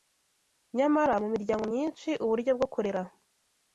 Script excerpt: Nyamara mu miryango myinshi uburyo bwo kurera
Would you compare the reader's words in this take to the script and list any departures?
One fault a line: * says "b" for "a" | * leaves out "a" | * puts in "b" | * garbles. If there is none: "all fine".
all fine